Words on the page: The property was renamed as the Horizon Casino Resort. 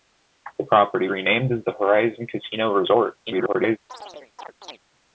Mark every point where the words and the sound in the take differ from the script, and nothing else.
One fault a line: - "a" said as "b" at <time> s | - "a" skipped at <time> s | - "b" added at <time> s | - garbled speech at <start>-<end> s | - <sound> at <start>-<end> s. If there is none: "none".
- "was" skipped at 1.1 s
- garbled speech at 3.2-3.8 s
- chirp at 3.9-4.8 s